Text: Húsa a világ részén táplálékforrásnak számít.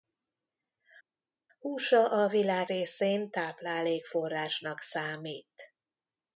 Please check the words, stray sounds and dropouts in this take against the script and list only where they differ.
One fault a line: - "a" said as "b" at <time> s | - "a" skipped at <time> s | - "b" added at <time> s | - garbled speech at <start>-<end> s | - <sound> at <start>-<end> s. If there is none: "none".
none